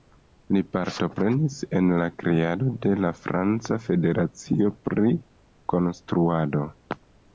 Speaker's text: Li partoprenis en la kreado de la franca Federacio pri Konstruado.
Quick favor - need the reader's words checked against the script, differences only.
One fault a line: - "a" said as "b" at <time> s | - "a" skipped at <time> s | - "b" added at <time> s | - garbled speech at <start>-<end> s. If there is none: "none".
none